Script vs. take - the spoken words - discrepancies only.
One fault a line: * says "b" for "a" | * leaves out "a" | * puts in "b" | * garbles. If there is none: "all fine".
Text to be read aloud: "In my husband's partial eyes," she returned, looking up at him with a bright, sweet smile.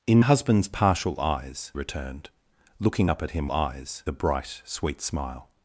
* leaves out "my"
* leaves out "she"
* says "eyes" for "with"